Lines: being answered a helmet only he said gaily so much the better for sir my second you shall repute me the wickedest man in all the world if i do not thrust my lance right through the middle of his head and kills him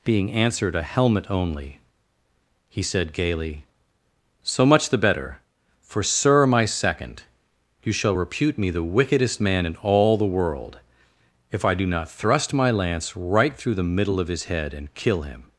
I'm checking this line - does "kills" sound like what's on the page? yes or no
no